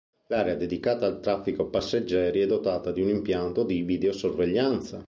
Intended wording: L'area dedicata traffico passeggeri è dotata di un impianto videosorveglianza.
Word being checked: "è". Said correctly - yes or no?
yes